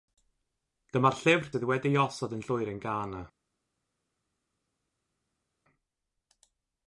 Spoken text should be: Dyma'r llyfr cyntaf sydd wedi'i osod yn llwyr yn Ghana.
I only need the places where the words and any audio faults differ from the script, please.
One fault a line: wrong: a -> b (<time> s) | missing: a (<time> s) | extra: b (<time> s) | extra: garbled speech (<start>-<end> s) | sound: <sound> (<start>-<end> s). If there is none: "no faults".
missing: cyntaf (1.5 s)